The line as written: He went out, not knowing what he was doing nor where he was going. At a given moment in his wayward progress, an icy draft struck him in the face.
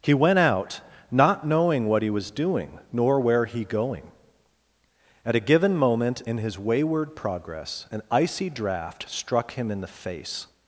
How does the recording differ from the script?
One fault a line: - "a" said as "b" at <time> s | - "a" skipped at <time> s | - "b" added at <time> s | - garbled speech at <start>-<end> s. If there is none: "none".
- "was" skipped at 3.6 s